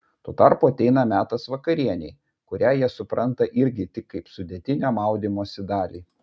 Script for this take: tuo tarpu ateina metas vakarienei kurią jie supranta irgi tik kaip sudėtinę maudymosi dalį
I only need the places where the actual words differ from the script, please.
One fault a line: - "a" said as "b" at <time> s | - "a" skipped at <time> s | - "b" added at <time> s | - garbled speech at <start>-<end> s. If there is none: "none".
none